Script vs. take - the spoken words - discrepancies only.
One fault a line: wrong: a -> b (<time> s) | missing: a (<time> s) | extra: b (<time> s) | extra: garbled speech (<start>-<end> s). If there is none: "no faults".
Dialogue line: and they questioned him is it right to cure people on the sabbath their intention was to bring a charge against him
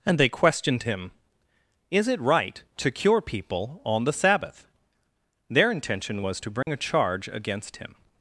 no faults